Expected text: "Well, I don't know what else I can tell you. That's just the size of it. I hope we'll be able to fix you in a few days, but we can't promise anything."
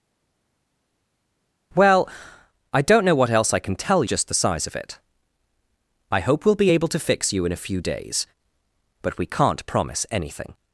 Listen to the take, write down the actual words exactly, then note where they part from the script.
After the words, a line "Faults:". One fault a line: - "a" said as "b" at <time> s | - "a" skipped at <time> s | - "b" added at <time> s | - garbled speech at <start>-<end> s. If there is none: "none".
"Well, I don't know what else I can tell just the size of it. I hope we'll be able to fix you in a few days, but we can't promise anything."
Faults:
- "you That's" skipped at 4.0 s